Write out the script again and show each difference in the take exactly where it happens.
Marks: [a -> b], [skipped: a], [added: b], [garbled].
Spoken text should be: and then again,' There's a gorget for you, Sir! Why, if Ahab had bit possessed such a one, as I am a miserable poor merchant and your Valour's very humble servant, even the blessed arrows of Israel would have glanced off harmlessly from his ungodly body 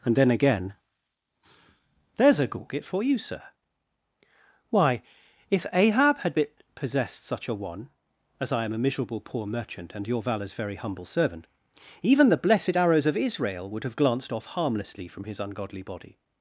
and then again,' There's a gorget for you, Sir! Why, if Ahab had bit possessed such a one, as I am a miserable poor merchant and your Valour's very humble servant, even the blessed arrows of Israel would have glanced off harmlessly from his ungodly body